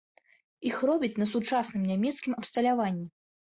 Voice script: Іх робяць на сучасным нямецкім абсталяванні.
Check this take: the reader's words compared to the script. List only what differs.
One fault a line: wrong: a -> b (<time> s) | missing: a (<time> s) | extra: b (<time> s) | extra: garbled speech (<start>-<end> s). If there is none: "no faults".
no faults